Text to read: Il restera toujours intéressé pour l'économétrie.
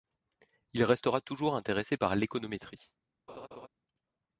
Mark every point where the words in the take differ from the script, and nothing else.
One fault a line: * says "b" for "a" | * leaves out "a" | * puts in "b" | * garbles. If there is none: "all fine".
* says "par" for "pour"